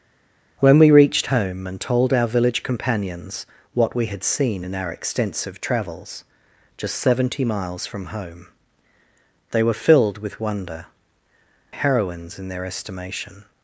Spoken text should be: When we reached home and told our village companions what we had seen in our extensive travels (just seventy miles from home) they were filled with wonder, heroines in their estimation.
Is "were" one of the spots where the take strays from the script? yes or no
no